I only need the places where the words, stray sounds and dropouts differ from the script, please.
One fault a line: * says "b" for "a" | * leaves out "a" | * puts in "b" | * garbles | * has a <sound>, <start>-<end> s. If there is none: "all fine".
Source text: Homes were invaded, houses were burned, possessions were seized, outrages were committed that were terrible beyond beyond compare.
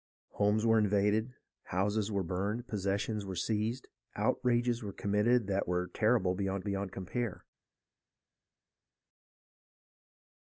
all fine